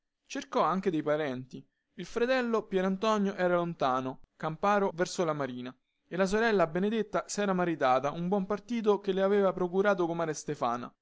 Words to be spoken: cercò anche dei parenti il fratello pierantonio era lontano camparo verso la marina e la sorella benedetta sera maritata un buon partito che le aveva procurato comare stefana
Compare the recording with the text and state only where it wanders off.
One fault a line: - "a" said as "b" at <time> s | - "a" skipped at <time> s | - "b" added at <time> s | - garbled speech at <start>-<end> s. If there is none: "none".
none